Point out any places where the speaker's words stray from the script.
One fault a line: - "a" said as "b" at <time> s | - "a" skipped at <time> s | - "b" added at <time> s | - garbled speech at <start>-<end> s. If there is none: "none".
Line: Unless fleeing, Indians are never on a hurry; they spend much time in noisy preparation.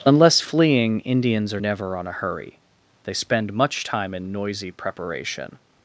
none